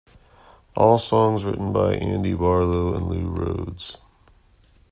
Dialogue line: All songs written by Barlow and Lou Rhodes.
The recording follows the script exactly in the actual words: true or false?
false